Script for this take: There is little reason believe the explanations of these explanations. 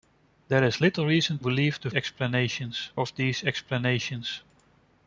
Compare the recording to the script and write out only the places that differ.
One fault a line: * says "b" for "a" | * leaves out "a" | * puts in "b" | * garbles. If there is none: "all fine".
all fine